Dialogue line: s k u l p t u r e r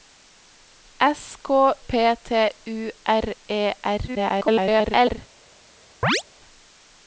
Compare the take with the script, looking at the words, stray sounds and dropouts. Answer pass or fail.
fail